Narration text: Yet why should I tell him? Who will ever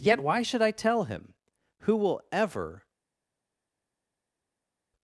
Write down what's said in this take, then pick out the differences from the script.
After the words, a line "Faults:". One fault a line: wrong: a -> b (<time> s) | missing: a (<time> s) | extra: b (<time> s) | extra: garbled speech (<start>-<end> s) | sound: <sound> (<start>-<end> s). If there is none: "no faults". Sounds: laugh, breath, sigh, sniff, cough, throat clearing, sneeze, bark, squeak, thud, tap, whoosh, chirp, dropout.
Yet why should I tell him? Who will ever
Faults:
no faults